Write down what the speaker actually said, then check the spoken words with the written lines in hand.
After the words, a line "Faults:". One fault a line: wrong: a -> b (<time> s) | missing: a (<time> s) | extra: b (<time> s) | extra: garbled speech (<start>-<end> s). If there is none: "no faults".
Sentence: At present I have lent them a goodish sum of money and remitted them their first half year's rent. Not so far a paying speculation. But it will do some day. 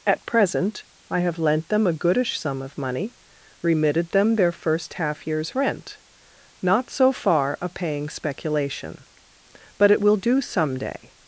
At present I have lent them a goodish sum of money remitted them their first half year's rent. Not so far a paying speculation. But it will do some day.
Faults:
missing: and (3.1 s)